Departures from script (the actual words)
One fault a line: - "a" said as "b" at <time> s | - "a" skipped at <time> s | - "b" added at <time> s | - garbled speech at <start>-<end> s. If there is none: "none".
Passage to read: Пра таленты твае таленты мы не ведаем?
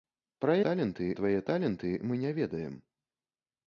none